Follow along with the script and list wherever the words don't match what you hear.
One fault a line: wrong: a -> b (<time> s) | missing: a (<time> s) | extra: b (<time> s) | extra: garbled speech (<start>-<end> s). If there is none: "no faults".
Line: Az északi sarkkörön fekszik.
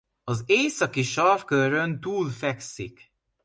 extra: túl (2.0 s)